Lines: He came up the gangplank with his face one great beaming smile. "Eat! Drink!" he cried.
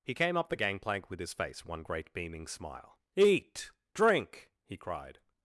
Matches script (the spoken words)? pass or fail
pass